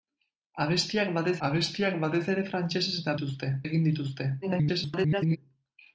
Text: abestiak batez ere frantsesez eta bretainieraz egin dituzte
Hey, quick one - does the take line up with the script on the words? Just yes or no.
no